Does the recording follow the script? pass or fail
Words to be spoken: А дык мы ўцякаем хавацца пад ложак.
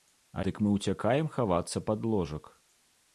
pass